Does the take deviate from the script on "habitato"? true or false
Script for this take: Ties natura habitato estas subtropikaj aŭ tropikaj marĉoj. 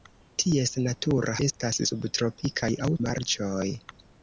true